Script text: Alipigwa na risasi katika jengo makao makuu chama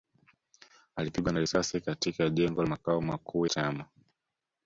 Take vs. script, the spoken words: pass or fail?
pass